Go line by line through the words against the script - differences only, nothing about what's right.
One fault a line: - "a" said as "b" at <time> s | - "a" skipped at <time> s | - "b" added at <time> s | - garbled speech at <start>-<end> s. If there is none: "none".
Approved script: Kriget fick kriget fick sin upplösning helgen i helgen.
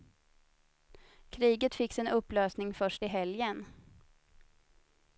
- "kriget fick" skipped at 1.9 s
- "helgen" said as "först" at 2.7 s